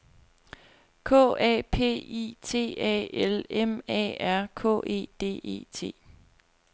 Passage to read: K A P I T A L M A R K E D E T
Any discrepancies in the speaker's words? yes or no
no